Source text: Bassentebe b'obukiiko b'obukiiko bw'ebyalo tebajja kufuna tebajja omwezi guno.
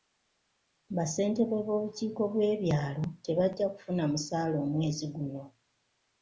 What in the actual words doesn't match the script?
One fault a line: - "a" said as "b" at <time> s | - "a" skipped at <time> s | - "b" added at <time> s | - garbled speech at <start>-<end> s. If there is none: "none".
- "b'obukiiko" skipped at 2.2 s
- "tebajja" said as "musaala" at 4.1 s